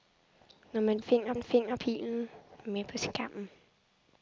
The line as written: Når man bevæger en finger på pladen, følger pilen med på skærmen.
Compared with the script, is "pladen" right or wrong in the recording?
wrong